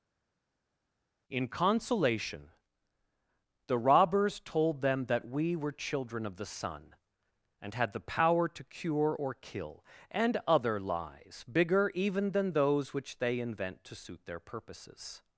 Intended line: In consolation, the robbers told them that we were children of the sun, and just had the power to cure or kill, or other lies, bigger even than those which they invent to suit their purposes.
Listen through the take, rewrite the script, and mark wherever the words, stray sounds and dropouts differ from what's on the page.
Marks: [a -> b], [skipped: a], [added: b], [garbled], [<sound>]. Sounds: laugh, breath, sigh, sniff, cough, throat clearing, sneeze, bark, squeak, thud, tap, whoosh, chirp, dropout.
In consolation, the robbers told them that we were children of the sun, and [skipped: just] had the power to cure or kill, [or -> and] other lies, bigger even than those which they invent to suit their purposes.